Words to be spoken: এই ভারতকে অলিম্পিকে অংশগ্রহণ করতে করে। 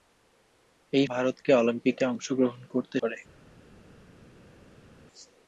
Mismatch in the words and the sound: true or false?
false